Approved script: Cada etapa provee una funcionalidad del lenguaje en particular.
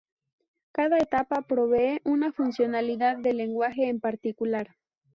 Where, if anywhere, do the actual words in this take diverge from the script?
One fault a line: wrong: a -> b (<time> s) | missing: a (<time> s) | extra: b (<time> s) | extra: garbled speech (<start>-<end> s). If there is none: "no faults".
no faults